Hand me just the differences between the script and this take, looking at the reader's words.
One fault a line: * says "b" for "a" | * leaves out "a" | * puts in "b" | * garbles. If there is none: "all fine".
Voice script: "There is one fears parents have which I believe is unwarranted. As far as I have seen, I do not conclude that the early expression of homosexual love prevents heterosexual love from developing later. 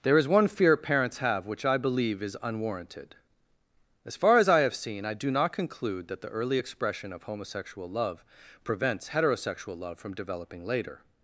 * says "fear" for "fears"